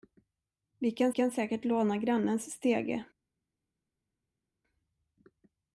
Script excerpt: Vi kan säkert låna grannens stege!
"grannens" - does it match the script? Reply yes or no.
yes